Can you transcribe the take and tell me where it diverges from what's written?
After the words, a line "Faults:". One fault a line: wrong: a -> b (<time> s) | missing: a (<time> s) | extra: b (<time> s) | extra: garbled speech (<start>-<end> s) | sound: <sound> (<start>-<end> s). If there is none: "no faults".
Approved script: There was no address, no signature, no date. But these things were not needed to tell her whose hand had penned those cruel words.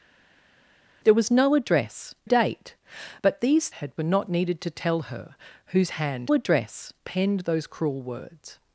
There was no address, date. But these had were not needed to tell her whose hand address penned those cruel words.
Faults:
missing: no signature no (2.1 s)
wrong: things -> had (3.7 s)
wrong: had -> address (6.3 s)